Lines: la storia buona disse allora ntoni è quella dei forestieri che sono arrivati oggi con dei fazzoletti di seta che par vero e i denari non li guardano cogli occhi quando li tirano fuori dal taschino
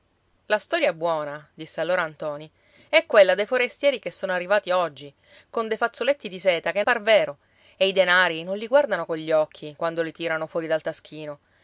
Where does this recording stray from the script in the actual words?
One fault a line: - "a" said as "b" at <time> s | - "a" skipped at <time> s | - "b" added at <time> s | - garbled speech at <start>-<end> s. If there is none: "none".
none